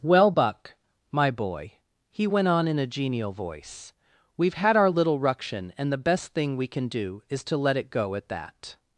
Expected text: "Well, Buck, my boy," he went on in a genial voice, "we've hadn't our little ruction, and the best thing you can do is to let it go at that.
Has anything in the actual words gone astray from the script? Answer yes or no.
yes